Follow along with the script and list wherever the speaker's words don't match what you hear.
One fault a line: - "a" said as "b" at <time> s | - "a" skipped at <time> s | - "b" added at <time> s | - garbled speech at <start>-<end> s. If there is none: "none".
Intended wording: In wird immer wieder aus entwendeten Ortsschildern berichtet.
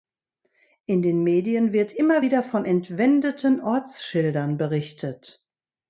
- "den Medien" added at 1.0 s
- "aus" said as "von" at 2.4 s